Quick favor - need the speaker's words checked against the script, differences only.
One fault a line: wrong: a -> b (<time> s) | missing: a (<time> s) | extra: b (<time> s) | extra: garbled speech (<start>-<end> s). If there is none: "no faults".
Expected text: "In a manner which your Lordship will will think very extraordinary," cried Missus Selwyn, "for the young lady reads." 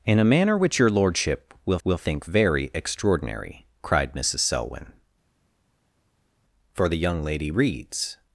no faults